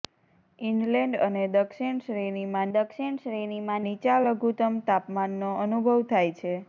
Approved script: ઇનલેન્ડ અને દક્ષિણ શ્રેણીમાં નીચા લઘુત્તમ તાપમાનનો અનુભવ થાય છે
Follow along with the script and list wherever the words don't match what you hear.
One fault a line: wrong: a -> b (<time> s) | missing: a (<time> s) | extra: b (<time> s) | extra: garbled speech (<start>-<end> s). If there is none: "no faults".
extra: દક્ષિણ શ્રેણીમાં (2.7 s)